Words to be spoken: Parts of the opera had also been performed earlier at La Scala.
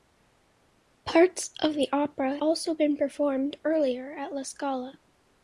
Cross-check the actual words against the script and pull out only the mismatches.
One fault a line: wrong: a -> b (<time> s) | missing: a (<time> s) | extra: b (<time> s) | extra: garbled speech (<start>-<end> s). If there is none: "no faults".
missing: had (2.4 s)